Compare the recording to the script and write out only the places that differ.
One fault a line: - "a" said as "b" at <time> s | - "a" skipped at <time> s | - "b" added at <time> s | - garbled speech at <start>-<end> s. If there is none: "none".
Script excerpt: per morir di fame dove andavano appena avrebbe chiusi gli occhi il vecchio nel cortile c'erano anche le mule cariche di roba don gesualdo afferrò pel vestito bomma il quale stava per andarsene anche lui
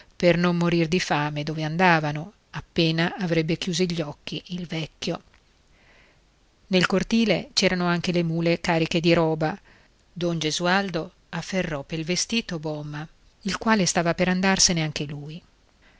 - "non" added at 0.3 s